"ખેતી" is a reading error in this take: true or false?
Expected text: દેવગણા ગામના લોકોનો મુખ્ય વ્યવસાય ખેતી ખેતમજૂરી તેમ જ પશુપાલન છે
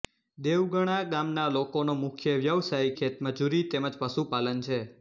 true